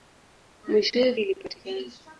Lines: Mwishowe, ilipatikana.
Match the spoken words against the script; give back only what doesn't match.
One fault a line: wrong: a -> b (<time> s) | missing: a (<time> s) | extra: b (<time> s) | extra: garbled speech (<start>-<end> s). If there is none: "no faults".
no faults